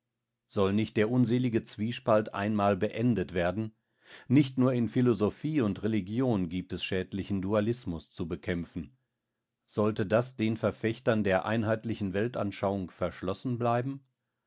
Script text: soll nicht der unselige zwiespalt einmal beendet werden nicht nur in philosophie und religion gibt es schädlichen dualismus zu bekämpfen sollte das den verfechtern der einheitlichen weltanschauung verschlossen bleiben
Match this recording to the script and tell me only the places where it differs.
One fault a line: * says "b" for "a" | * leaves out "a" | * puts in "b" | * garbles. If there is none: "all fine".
all fine